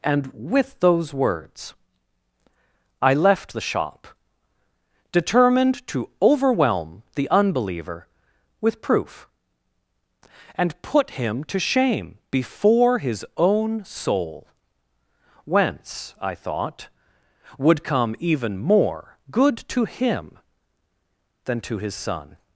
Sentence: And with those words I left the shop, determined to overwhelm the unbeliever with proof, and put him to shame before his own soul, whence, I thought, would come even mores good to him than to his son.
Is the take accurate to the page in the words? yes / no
no